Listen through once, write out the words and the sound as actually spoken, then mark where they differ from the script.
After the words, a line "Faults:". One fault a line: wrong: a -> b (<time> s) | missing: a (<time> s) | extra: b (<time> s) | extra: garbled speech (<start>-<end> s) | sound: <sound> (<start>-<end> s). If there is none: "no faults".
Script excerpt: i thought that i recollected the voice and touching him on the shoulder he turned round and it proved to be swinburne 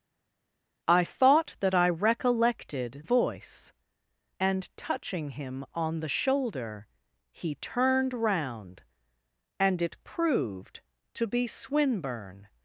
i thought that i recollected voice and touching him on the shoulder he turned round and it proved to be swinburne
Faults:
missing: the (3.0 s)